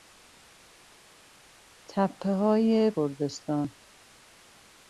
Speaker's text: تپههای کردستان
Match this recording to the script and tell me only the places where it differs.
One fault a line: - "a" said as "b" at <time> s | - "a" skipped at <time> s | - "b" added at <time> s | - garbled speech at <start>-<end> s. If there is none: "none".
none